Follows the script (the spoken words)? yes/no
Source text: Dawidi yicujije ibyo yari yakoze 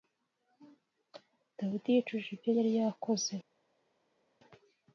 yes